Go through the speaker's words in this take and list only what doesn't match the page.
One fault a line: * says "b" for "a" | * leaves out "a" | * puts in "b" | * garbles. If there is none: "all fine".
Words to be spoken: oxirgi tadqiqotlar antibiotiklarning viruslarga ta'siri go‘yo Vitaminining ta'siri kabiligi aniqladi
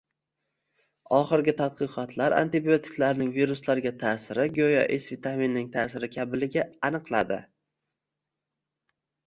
* puts in "S"